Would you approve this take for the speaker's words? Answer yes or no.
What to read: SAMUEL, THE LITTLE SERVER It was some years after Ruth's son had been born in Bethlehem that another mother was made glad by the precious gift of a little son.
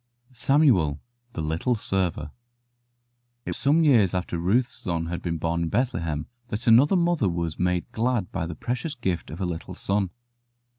no